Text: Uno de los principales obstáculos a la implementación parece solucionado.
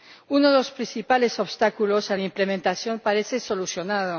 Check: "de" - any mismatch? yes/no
no